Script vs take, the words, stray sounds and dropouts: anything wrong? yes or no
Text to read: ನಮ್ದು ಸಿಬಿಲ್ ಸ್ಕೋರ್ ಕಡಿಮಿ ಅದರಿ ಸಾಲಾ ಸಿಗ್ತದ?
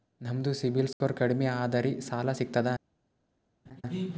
yes